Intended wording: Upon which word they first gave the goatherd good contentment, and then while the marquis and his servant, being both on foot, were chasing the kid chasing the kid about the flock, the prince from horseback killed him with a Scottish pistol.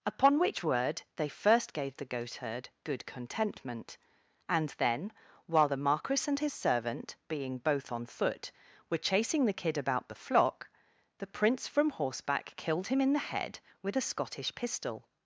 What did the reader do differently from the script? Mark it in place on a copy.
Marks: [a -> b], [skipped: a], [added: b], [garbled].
Upon which word they first gave the goatherd good contentment, and then while the marquis and his servant, being both on foot, were chasing the kid [skipped: chasing the kid] about the flock, the prince from horseback killed him [added: in the head] with a Scottish pistol.